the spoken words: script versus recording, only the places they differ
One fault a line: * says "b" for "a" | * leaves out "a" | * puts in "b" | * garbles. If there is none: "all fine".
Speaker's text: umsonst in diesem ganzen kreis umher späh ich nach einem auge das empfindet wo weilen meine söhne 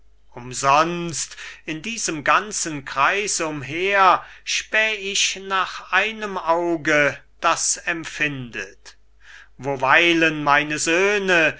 all fine